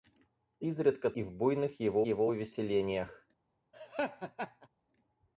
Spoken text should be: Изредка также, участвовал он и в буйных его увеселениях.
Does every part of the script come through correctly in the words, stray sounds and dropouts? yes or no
no